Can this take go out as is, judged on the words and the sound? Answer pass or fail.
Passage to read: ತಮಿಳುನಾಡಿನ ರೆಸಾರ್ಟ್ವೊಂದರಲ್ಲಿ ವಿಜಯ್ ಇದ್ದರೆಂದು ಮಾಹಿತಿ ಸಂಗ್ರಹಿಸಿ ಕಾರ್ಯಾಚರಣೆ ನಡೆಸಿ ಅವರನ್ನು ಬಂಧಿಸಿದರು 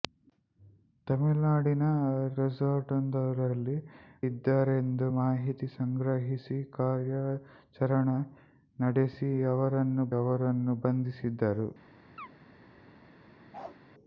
fail